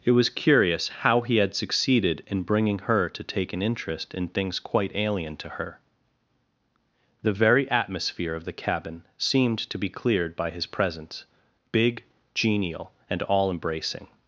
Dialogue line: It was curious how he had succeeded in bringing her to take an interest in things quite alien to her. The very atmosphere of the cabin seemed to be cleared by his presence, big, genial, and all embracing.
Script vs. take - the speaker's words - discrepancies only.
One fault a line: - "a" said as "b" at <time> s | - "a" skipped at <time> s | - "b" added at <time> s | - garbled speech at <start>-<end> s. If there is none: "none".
none